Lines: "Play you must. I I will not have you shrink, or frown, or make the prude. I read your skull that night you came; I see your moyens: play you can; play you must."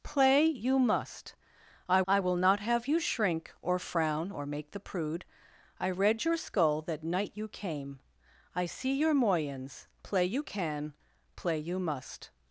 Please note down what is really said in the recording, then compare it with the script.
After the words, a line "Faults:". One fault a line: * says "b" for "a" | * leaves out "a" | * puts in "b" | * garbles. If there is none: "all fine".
"Play you must. I I will not have you shrink, or frown, or make the prude. I read your skull that night you came; I see your moyens: play you can; play you must."
Faults:
all fine